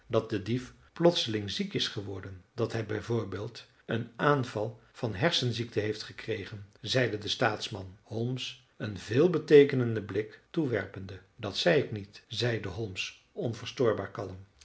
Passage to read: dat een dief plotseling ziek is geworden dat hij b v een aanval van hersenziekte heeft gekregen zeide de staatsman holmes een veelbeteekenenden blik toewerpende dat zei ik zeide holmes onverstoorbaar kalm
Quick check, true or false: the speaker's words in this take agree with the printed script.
false